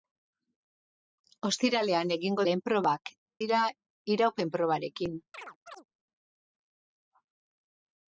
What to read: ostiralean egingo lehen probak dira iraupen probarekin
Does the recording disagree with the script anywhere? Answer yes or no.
no